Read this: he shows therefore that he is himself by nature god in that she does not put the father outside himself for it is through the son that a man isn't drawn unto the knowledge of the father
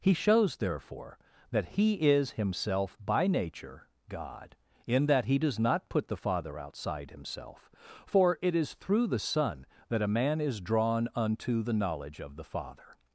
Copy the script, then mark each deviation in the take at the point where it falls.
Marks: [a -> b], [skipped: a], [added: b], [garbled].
he shows therefore that he is himself by nature god in that [she -> he] does not put the father outside himself for it is through the son that a man [isn't -> is] drawn unto the knowledge of the father